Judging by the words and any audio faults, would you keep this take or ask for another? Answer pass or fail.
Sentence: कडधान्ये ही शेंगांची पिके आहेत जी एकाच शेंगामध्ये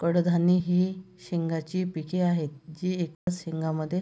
fail